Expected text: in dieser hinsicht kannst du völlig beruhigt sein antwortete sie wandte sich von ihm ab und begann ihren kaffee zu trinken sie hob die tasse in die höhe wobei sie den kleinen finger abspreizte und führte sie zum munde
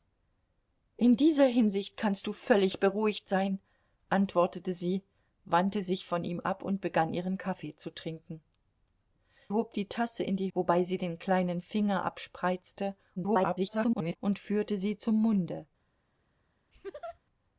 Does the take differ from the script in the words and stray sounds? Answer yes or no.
yes